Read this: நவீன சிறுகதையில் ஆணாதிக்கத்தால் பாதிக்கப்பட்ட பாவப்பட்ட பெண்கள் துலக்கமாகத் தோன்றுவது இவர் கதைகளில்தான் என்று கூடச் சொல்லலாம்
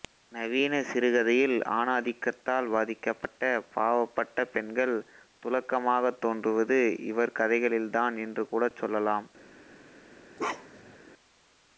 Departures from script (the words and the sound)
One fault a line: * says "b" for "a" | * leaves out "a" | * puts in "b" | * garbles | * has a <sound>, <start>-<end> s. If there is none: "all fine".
* has a bark, 10.4-11.0 s